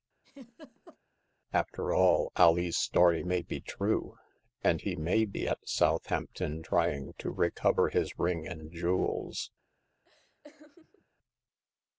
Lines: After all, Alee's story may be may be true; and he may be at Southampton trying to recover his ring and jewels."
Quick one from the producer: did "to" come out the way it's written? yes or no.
yes